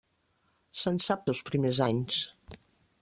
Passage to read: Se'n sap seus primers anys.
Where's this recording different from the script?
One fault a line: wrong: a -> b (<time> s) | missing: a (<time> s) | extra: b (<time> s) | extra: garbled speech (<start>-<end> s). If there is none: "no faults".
no faults